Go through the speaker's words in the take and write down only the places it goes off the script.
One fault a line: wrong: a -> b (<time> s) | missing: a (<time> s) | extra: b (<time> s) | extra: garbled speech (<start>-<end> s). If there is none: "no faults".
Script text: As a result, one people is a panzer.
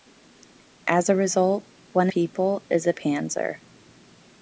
no faults